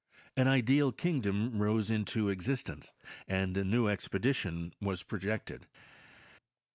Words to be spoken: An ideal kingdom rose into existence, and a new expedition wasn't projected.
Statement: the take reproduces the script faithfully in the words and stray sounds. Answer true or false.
false